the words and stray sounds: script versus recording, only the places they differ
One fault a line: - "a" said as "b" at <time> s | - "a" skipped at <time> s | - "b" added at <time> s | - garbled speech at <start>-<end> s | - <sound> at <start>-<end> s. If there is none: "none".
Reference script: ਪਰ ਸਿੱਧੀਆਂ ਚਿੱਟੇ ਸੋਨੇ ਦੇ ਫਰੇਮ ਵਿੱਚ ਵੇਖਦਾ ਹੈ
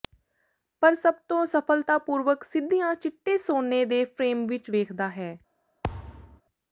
- "ਸਭ ਤੋਂ ਸਫਲਤਾਪੂਰਵਕ" added at 0.9 s
- thud at 5.8-6.4 s